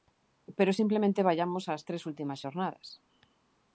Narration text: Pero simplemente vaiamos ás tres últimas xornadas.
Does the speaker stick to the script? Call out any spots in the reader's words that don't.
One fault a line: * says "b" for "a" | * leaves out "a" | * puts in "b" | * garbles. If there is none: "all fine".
all fine